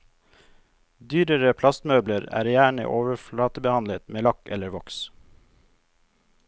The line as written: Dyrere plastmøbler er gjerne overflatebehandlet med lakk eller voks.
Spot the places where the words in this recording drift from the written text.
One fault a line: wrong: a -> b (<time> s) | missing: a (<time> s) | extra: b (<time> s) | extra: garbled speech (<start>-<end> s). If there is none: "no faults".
no faults